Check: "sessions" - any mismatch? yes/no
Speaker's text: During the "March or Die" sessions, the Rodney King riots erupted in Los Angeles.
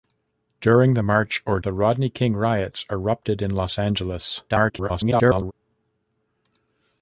yes